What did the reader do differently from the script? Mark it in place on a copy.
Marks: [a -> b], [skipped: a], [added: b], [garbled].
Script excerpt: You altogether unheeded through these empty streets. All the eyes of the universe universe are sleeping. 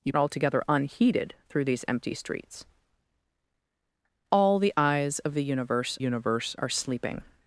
You altogether unheeded through these empty streets. All the eyes of the universe universe are sleeping.